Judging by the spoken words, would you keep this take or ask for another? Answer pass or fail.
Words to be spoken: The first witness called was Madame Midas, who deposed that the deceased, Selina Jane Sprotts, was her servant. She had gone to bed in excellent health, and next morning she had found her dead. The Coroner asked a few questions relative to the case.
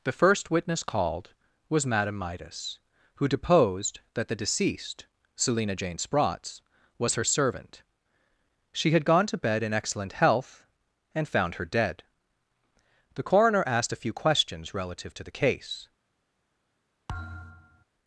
fail